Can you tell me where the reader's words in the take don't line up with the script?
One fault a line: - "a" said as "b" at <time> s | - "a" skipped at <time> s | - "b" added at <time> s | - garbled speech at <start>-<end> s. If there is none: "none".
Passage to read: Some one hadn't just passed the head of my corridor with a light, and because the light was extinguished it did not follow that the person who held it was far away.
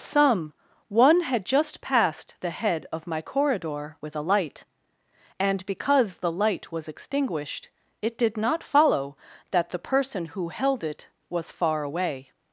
- "hadn't" said as "had" at 1.2 s